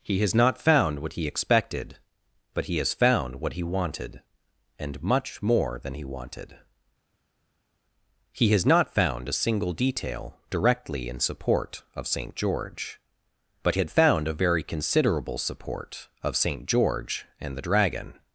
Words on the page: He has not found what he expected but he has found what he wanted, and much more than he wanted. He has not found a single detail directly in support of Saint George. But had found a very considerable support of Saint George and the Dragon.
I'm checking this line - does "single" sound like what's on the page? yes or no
yes